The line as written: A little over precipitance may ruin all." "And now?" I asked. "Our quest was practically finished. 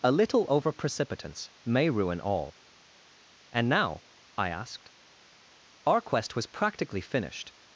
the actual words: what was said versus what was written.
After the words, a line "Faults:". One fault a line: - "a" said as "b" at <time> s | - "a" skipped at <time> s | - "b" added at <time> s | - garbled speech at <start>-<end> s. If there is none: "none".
A little over precipitance may ruin all." "And now?" I asked. "Our quest was practically finished.
Faults:
none